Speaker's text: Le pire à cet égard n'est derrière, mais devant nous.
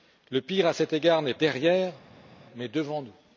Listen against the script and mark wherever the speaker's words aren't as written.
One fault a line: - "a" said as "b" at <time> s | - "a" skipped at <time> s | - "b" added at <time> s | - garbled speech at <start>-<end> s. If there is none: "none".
none